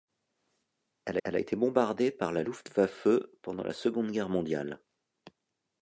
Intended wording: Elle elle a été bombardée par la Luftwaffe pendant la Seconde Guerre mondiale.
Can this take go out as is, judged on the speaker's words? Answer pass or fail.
pass